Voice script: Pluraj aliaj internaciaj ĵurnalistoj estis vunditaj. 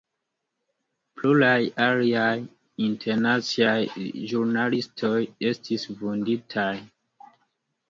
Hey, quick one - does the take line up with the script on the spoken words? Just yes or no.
yes